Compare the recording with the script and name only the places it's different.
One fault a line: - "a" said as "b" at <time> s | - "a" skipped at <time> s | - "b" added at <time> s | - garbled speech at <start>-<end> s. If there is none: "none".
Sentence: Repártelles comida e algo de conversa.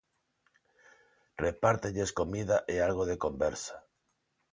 none